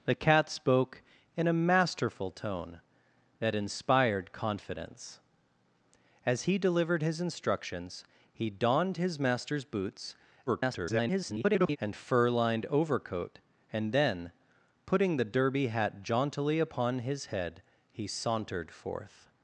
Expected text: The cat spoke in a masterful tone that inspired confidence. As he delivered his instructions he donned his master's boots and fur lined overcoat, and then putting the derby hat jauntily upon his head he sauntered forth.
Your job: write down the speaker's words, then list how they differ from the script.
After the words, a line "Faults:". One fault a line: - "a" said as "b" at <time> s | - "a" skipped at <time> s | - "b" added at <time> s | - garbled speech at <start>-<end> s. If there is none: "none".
The cat spoke in a masterful tone that inspired confidence. As he delivered his instructions he donned his master's boots [garbled] and fur lined overcoat, and then putting the derby hat jauntily upon his head he sauntered forth.
Faults:
- garbled speech at 10.5-11.8 s